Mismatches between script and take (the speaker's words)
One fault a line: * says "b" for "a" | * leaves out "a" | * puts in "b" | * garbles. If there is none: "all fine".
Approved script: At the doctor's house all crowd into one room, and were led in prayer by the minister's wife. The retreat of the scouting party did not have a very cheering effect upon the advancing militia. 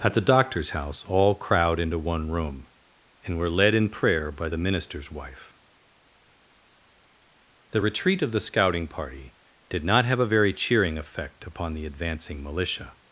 all fine